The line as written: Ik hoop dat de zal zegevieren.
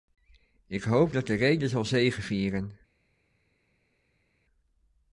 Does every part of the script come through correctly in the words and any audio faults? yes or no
no